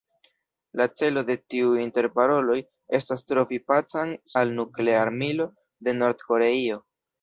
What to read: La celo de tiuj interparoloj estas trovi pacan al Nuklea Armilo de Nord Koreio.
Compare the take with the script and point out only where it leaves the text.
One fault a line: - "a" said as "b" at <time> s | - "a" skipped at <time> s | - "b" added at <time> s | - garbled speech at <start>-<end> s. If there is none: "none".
none